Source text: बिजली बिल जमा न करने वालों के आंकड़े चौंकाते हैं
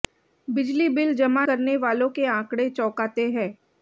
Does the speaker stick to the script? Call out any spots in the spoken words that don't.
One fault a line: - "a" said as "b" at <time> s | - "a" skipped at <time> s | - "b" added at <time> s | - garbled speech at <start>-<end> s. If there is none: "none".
- "न" skipped at 1.4 s